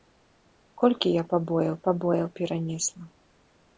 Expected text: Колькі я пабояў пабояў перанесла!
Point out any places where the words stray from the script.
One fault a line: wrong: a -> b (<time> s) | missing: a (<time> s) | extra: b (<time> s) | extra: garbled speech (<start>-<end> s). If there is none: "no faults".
no faults